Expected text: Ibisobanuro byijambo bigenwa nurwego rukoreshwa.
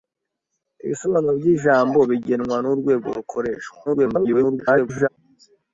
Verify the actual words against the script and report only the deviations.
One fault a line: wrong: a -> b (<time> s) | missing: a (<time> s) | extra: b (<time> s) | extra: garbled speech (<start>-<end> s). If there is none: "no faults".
extra: garbled speech (3.9-5.1 s)